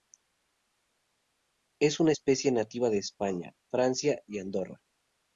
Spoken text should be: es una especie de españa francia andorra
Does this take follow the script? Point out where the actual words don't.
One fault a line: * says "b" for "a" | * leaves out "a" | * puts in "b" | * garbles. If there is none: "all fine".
* puts in "nativa"
* puts in "y"